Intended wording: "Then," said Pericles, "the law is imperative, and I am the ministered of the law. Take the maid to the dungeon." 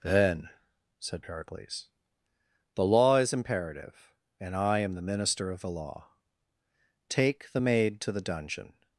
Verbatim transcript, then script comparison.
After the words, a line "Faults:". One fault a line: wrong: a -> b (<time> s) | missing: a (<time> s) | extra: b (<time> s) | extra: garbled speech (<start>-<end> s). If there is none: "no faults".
"Then," said Pericles, "the law is imperative, and I am the minister of the law. Take the maid to the dungeon."
Faults:
wrong: ministered -> minister (5.0 s)